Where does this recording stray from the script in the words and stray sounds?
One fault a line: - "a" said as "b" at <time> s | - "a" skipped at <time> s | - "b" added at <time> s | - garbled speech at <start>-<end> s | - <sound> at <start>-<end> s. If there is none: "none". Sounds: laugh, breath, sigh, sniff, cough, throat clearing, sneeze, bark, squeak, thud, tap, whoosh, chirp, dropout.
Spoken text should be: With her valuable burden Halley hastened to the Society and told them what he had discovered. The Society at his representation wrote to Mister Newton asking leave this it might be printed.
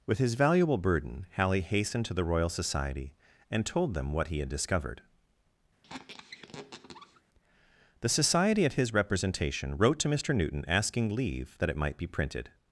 - "her" said as "his" at 0.2 s
- "Royal" added at 2.2 s
- squeak at 5.8-7.2 s
- "this" said as "that" at 11.6 s